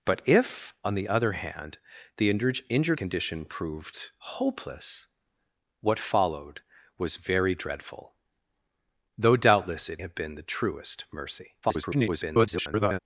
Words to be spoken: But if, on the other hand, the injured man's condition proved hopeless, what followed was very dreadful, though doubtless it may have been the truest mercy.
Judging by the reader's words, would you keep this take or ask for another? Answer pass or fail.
fail